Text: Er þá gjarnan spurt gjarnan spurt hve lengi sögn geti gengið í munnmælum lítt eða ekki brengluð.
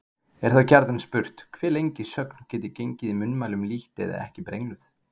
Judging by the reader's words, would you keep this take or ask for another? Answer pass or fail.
fail